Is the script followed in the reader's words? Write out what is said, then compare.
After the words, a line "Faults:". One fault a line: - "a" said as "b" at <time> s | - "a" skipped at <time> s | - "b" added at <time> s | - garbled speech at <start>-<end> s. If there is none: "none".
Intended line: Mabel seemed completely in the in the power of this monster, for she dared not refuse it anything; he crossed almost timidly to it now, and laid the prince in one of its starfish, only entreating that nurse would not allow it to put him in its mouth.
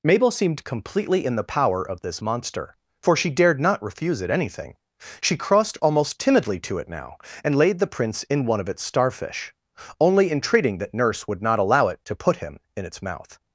Mabel seemed completely in the power of this monster, for she dared not refuse it anything; she crossed almost timidly to it now, and laid the prince in one of its starfish, only entreating that nurse would not allow it to put him in its mouth.
Faults:
- "in the" skipped at 1.5 s
- "he" said as "she" at 5.2 s